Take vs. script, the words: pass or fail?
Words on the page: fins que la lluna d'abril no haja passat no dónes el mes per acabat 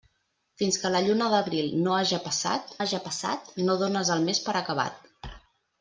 fail